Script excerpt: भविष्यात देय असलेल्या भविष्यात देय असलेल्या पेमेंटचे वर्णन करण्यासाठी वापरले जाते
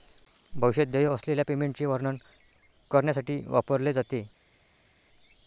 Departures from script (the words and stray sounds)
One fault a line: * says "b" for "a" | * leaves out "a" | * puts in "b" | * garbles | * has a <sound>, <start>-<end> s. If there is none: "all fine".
* leaves out "भविष्यात देय असलेल्या"